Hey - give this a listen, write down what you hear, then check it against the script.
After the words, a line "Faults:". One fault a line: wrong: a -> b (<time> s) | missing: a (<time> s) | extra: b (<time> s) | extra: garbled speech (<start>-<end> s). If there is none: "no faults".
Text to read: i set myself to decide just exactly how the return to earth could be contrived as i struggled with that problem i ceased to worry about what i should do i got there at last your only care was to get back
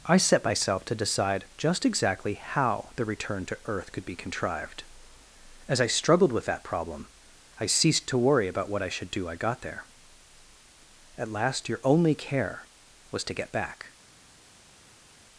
i set myself to decide just exactly how the return to earth could be contrived as i struggled with that problem i ceased to worry about what i should do i got there at last your only care was to get back
Faults:
no faults